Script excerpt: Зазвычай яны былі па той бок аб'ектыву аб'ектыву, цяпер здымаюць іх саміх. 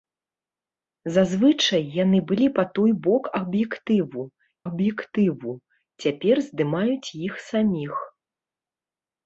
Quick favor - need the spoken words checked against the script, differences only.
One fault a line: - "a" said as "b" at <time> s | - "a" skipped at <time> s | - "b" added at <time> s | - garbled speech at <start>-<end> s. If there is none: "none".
none